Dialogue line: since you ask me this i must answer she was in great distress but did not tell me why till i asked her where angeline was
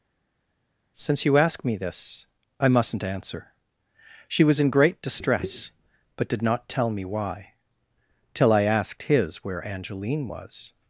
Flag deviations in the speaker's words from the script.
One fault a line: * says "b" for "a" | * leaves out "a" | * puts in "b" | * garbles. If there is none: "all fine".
* says "mustn't" for "must"
* says "his" for "her"